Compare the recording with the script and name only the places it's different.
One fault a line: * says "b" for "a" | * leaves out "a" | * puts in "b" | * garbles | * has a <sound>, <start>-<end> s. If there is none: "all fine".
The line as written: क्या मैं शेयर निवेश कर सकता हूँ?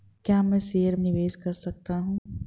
* has a dropout, 2.2-2.3 s